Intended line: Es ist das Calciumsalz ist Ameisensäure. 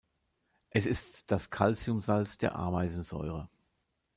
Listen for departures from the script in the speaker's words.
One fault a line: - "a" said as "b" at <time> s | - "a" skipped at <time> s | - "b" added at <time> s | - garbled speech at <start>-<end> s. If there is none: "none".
- "ist" said as "der" at 2.4 s